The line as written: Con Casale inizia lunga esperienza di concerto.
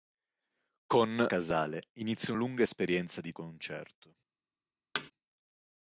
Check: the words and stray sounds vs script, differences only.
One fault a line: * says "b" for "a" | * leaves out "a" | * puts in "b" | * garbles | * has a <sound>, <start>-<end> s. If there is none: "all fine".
* has a thud, 4.9-5.1 s